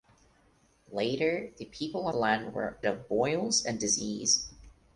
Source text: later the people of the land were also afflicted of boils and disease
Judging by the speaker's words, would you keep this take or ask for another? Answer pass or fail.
fail